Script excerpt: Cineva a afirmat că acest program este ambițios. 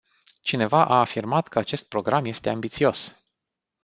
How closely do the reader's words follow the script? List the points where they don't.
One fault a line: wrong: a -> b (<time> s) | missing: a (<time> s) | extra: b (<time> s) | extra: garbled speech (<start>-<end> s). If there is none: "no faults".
no faults